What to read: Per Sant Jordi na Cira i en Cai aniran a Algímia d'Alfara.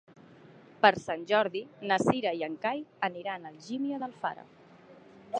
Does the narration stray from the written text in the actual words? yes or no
no